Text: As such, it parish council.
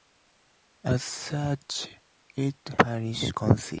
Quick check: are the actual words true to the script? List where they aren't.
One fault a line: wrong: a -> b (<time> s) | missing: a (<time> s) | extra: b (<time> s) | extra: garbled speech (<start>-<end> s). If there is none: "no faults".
no faults